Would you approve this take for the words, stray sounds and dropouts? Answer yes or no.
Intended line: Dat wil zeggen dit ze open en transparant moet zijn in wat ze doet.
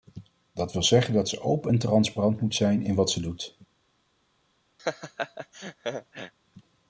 no